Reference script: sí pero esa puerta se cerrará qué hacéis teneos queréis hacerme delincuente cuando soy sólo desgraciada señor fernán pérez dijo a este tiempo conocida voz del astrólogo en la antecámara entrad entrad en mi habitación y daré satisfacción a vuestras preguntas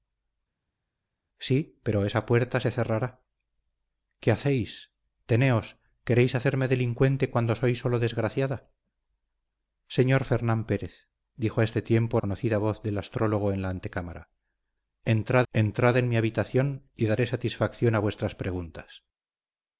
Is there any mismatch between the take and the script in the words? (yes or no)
no